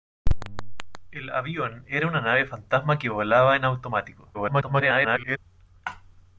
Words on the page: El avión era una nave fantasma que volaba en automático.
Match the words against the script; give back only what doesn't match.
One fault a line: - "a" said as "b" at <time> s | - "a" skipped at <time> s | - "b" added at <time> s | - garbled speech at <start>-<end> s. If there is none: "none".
- garbled speech at 4.3-5.4 s